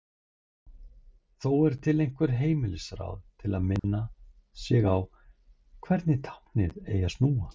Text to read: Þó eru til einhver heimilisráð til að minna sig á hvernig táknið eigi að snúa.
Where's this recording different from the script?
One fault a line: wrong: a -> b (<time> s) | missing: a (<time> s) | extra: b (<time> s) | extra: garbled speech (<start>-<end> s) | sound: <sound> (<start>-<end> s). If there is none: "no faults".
sound: dropout (3.8-3.8 s)